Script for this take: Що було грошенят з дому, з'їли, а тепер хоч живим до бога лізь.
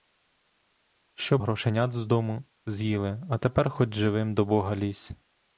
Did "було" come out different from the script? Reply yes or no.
yes